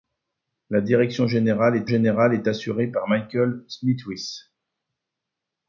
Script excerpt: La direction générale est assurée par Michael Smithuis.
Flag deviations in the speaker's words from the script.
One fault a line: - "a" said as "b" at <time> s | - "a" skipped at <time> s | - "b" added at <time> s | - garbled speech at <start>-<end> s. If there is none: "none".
- "générale est" added at 1.9 s